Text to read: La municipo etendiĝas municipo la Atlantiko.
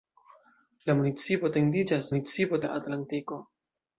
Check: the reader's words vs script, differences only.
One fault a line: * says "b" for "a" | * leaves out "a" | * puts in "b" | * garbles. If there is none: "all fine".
all fine